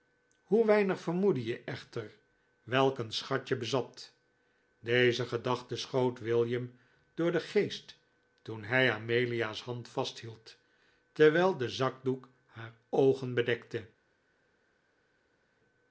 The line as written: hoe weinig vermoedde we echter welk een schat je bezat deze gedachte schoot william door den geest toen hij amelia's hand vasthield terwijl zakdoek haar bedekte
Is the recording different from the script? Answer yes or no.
yes